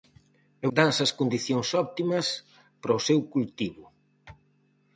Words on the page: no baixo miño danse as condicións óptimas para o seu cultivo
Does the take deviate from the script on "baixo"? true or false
true